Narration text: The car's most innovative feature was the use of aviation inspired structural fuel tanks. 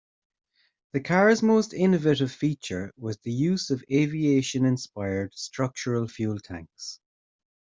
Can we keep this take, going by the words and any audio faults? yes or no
yes